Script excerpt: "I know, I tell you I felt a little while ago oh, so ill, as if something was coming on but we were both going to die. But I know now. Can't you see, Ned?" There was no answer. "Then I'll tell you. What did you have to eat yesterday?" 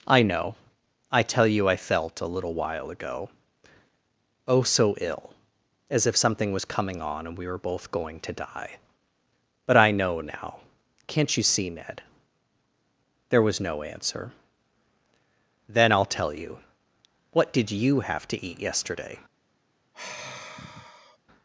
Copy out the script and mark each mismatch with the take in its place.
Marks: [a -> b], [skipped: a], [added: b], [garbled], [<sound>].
"I know, I tell you I felt a little while ago oh, so ill, as if something was coming on [but -> and] we were both going to die. But I know now. Can't you see, Ned?" There was no answer. "Then I'll tell you. What did you have to eat yesterday?" [sigh]